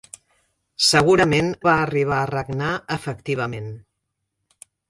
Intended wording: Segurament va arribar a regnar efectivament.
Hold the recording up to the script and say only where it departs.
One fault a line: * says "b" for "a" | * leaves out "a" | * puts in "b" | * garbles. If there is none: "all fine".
all fine